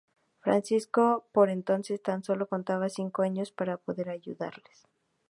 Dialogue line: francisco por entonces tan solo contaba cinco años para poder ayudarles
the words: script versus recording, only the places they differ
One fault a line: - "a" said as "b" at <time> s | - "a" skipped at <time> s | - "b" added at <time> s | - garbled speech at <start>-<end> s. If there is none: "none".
none